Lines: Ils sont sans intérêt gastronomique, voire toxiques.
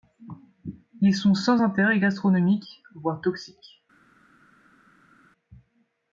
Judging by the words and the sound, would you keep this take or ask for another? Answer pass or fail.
pass